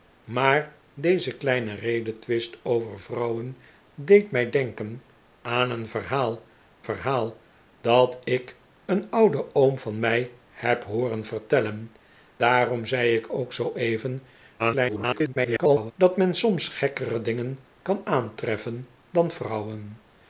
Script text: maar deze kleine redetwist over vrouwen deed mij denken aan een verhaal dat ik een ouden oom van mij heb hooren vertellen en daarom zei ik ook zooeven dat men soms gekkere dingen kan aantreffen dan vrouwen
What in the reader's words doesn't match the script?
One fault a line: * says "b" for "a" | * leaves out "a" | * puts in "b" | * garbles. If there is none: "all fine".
* puts in "verhaal"
* leaves out "en"
* garbles